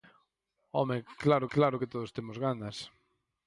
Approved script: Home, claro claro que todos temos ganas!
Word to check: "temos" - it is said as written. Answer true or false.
true